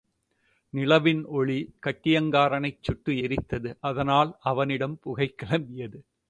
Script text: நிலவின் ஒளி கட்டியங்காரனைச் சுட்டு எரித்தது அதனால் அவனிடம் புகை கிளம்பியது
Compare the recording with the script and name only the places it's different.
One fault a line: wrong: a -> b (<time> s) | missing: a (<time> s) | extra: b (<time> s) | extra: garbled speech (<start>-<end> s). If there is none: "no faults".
no faults